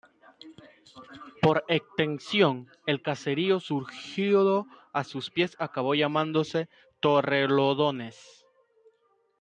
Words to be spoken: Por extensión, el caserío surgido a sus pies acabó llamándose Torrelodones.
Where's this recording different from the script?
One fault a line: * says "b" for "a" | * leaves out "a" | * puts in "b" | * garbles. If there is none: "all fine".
all fine